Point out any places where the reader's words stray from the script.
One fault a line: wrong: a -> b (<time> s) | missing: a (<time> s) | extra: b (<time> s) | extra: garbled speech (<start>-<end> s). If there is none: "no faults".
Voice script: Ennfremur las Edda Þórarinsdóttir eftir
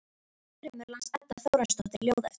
extra: ljóð (2.1 s)